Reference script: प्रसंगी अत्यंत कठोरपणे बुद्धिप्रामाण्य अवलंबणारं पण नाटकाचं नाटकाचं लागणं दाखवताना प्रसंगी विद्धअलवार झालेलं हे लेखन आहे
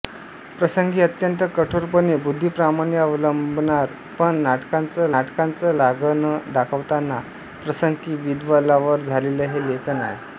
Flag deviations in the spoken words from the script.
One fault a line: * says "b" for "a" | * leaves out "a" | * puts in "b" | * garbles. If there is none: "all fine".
all fine